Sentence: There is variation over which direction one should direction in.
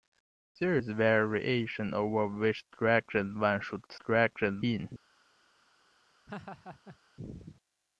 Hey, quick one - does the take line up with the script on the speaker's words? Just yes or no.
yes